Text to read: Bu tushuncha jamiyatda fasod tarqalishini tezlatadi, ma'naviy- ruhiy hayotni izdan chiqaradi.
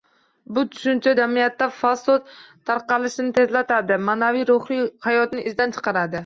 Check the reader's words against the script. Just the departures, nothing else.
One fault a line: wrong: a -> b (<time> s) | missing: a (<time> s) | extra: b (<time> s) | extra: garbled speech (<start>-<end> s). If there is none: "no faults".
no faults